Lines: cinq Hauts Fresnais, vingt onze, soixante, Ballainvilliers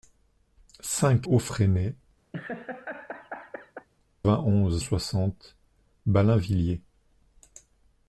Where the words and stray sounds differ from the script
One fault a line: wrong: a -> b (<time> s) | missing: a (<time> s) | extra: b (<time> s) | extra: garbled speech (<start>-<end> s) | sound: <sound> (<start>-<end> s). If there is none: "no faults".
sound: laugh (2.3-3.9 s)